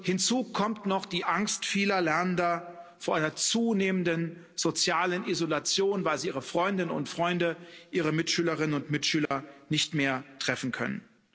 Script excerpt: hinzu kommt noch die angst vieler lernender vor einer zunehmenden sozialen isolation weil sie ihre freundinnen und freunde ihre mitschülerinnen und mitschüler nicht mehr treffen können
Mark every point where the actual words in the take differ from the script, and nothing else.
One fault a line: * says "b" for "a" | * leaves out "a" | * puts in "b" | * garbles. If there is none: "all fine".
all fine